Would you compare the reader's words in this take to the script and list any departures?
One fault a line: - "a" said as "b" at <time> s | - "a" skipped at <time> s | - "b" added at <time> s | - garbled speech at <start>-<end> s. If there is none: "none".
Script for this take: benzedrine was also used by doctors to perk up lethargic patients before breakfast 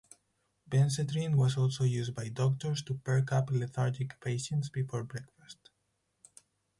none